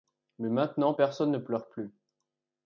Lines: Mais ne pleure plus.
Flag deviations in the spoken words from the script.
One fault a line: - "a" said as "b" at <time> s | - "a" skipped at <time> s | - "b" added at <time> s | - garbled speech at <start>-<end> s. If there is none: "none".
- "maintenant personne" added at 0.5 s